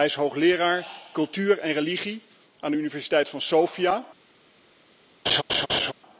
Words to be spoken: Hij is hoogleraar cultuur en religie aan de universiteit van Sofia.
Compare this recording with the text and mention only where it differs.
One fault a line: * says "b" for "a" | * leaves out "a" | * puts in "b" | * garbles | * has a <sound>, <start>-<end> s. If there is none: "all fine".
* has a laugh, 5.3-5.9 s